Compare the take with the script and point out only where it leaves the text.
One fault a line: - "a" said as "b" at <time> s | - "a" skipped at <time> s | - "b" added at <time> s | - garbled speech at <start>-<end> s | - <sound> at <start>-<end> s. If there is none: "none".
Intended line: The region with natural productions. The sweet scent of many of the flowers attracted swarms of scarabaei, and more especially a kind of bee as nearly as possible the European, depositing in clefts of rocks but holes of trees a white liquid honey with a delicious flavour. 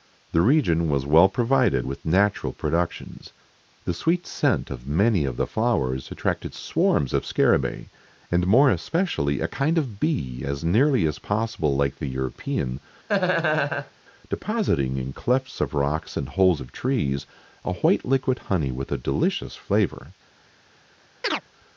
- "was well provided" added at 0.9 s
- "like" added at 11.7 s
- laugh at 13.1-13.9 s
- "but" said as "and" at 16.2 s
- chirp at 21.2-21.4 s